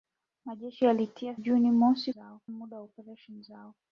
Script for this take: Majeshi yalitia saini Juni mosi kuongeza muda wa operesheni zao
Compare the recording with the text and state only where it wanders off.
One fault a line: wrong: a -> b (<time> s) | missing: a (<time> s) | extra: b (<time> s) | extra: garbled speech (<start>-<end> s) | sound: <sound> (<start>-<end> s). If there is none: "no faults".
missing: saini (1.4 s)
wrong: kuongeza -> zao (2.1 s)